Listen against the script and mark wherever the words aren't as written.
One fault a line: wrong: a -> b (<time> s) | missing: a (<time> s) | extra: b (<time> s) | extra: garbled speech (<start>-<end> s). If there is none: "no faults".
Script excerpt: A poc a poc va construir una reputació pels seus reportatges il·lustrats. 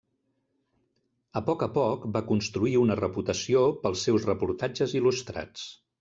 no faults